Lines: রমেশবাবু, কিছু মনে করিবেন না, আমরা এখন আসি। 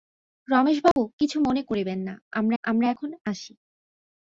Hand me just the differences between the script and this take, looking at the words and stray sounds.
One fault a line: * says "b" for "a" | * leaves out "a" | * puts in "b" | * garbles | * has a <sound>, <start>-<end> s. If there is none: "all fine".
* has a dropout, 0.9-1.0 s
* puts in "আমরা"